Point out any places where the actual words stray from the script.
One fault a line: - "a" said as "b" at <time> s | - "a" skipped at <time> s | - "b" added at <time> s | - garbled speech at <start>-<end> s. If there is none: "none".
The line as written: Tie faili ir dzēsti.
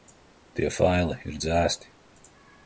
none